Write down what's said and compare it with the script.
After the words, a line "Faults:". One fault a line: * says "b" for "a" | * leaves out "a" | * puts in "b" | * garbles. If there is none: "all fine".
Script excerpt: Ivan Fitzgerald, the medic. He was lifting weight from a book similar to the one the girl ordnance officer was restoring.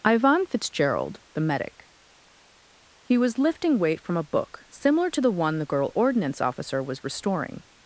Ivan Fitzgerald, the medic. He was lifting weight from a book similar to the one the girl ordnance officer was restoring.
Faults:
all fine